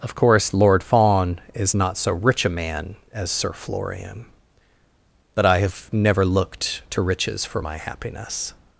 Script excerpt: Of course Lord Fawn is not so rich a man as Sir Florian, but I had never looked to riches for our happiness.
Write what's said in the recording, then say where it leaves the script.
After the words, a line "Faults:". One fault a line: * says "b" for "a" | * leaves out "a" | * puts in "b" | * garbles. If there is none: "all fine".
Of course Lord Fawn is not so rich a man as Sir Florian, but I have never looked to riches for my happiness.
Faults:
* says "have" for "had"
* says "my" for "our"